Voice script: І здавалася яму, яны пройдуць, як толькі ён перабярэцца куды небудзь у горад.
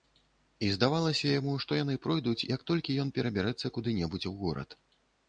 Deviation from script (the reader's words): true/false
true